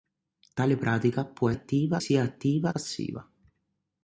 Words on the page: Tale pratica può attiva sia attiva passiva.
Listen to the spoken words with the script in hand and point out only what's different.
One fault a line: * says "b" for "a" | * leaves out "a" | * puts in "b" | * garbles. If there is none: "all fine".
all fine